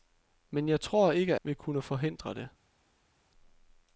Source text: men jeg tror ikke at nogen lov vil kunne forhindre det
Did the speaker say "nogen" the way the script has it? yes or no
no